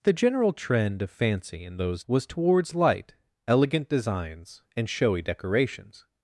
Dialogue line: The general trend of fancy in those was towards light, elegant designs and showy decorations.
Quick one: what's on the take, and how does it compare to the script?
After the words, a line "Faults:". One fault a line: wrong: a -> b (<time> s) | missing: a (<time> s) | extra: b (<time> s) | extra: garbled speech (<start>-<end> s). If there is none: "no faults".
The general trend of fancy in those was towards light, elegant designs and showy decorations.
Faults:
no faults